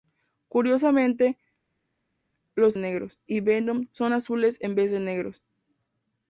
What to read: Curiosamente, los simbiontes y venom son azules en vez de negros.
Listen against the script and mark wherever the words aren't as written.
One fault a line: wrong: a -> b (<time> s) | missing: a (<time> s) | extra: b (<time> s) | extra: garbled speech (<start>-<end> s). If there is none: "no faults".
wrong: simbiontes -> negros (2.8 s)